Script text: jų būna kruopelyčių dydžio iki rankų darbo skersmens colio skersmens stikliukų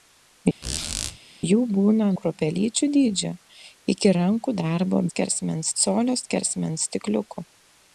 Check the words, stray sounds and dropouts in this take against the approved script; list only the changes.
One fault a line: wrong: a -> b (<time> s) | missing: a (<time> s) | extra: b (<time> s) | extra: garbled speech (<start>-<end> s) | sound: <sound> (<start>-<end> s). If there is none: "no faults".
sound: squeak (0.6-1.2 s)